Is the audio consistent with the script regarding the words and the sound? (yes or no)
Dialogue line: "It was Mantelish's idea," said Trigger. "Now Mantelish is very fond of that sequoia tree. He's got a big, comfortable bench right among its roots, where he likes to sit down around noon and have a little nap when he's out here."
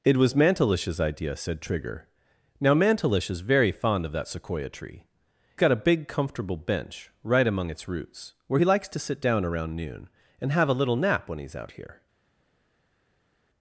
no